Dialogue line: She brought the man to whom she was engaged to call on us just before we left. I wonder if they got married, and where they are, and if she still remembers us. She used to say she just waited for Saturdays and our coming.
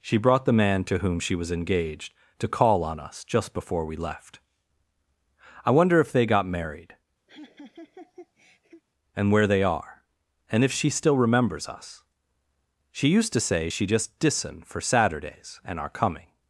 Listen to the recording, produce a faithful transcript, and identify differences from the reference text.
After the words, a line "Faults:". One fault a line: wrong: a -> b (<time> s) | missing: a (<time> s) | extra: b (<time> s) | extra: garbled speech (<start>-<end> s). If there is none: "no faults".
She brought the man to whom she was engaged to call on us just before we left. I wonder if they got married, and where they are, and if she still remembers us. She used to say she just dissen for Saturdays and our coming.
Faults:
wrong: waited -> dissen (14.2 s)